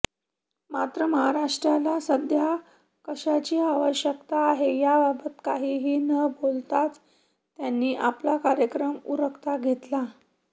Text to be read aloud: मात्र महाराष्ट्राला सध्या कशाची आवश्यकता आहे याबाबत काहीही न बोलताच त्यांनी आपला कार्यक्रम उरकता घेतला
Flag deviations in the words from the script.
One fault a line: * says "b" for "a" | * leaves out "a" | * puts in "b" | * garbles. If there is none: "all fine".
all fine